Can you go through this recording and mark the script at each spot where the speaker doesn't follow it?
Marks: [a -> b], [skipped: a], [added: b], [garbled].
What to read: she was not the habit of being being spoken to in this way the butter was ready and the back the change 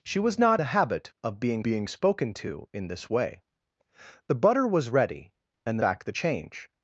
she was not the habit of being being spoken to in this way the butter was ready and the back the change